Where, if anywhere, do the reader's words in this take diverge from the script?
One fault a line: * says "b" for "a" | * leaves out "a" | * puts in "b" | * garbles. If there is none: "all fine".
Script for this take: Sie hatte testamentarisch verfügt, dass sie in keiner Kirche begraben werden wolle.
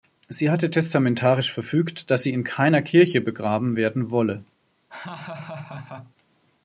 all fine